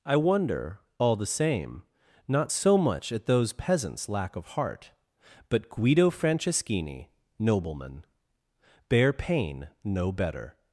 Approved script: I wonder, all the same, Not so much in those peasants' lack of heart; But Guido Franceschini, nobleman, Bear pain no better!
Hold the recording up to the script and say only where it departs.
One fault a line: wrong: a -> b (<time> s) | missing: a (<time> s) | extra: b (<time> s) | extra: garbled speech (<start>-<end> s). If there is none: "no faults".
wrong: in -> at (3.1 s)